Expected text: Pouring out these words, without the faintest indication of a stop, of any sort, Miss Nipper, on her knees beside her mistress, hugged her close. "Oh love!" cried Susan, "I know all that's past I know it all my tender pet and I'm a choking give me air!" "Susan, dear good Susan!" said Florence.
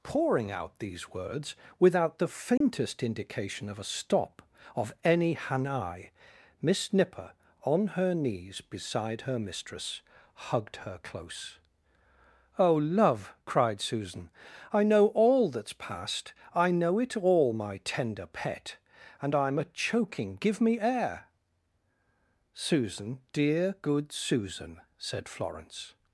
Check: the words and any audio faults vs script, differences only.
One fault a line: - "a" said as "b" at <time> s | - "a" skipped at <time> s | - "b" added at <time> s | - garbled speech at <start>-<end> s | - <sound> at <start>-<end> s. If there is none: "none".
- dropout at 2.6-2.6 s
- "sort" said as "hanai" at 5.3 s